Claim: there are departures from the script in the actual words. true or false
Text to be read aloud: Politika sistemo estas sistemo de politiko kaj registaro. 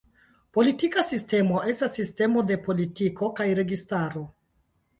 false